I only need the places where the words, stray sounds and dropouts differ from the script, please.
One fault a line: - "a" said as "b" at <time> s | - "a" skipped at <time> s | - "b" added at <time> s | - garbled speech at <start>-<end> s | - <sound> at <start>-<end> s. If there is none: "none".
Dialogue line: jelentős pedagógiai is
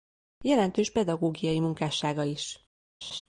- "munkássága" added at 1.6 s
- laugh at 3.0-3.2 s